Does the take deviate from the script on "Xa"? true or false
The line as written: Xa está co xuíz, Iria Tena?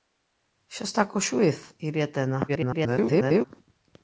false